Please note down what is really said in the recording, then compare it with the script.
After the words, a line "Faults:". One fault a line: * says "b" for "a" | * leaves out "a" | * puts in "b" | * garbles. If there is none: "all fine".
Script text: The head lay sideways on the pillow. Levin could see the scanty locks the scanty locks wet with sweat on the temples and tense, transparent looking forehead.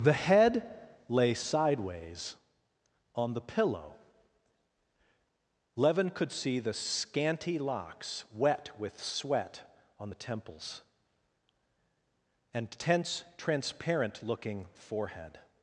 The head lay sideways on the pillow. Levin could see the scanty locks wet with sweat on the temples and tense, transparent looking forehead.
Faults:
* leaves out "the scanty locks"